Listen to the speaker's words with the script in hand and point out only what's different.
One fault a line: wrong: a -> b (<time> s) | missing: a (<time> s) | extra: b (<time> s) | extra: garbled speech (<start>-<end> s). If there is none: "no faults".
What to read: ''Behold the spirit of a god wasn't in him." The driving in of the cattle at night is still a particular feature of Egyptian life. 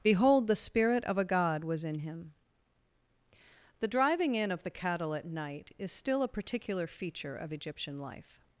wrong: wasn't -> was (1.6 s)